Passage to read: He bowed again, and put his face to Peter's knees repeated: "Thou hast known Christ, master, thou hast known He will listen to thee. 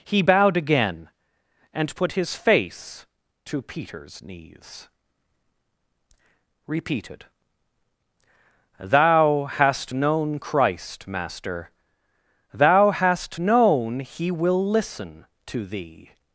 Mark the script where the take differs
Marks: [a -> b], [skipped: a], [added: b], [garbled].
He bowed again, and put his face to Peter's knees repeated: "Thou hast known Christ, master, thou hast known He will listen to thee.